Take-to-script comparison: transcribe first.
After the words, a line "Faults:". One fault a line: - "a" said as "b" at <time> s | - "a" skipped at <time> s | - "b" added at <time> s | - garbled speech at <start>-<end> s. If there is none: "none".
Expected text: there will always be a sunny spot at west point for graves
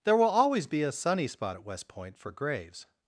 there will always be a sunny spot at west point for graves
Faults:
none